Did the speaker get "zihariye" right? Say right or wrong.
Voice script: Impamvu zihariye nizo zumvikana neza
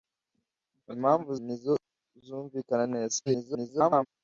wrong